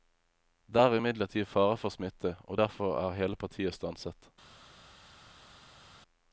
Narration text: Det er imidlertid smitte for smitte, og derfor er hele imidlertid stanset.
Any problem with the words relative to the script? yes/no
yes